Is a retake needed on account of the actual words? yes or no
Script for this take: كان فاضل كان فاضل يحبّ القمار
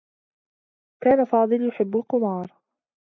yes